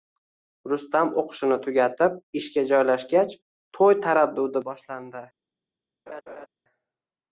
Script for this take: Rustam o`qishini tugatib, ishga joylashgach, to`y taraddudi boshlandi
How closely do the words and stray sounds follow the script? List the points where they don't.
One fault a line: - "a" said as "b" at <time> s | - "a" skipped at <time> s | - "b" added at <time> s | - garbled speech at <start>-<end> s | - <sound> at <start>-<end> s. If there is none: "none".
- laugh at 6.1-6.5 s